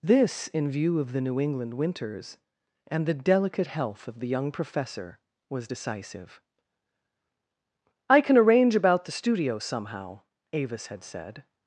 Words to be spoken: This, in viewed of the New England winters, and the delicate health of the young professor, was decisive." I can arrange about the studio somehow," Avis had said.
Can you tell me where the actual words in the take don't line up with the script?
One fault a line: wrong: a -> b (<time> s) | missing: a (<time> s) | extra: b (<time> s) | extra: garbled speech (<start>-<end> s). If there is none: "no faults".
wrong: viewed -> view (0.7 s)